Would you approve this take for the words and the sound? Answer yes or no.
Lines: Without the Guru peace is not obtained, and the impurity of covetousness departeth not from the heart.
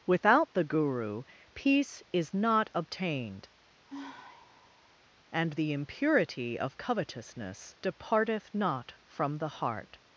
no